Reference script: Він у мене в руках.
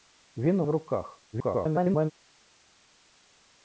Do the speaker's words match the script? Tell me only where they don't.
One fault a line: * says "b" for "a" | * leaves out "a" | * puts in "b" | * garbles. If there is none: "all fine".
* leaves out "мене"
* garbles